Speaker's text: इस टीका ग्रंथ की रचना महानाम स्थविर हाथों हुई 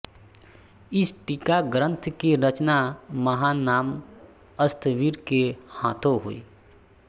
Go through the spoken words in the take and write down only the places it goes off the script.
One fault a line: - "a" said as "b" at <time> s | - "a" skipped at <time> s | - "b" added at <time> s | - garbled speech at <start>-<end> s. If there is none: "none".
- "के" added at 5.3 s